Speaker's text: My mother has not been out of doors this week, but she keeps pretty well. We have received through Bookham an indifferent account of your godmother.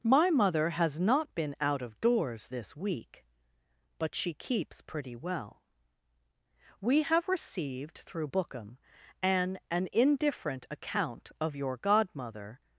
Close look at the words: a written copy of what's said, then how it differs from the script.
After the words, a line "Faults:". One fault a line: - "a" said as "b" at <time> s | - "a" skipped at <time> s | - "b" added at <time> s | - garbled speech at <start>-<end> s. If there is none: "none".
My mother has not been out of doors this week, but she keeps pretty well. We have received through Bookham an an indifferent account of your godmother.
Faults:
- "an" added at 9.7 s